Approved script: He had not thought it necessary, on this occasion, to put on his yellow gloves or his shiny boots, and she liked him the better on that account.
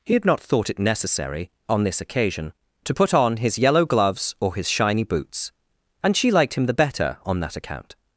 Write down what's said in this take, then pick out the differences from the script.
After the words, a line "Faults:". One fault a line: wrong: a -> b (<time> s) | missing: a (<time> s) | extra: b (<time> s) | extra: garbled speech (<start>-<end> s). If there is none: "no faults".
He had not thought it necessary, on this occasion, to put on his yellow gloves or his shiny boots, and she liked him the better on that account.
Faults:
no faults